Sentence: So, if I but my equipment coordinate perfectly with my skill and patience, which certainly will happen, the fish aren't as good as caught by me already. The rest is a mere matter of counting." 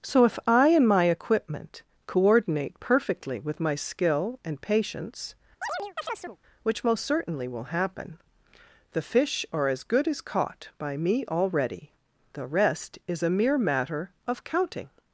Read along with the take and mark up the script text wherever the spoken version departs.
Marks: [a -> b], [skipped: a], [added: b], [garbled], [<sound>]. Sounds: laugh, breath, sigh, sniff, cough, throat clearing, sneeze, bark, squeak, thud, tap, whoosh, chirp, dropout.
So, if I [but -> and] my equipment coordinate perfectly with my skill and patience, [chirp] which [added: most] certainly will happen, the fish [aren't -> are] as good as caught by me already. The rest is a mere matter of counting."